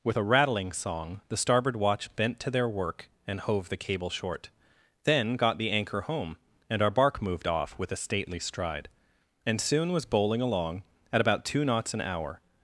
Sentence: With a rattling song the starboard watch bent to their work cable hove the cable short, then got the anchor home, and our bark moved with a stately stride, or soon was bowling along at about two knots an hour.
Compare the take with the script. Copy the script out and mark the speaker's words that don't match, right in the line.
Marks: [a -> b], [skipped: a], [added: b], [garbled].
With a rattling song the starboard watch bent to their work [cable -> and] hove the cable short, then got the anchor home, and our bark moved [added: off] with a stately stride, [or -> and] soon was bowling along at about two knots an hour.